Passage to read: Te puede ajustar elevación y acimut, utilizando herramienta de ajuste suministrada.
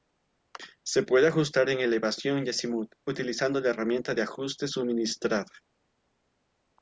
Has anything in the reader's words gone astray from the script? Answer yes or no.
yes